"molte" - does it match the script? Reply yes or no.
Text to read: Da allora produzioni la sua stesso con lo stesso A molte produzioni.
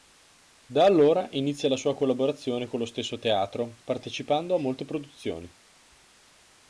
yes